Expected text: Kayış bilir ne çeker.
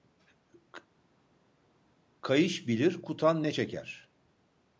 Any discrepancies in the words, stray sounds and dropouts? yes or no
yes